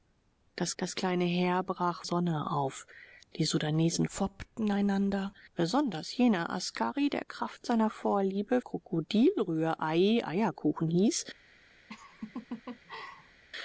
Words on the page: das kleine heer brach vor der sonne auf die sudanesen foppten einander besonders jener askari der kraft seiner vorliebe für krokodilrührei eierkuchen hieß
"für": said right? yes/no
no